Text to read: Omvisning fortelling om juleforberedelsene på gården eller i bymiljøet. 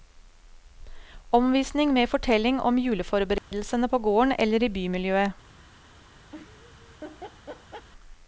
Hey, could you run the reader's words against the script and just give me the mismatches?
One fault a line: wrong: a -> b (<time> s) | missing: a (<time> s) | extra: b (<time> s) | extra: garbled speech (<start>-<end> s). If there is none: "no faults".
extra: med (1.9 s)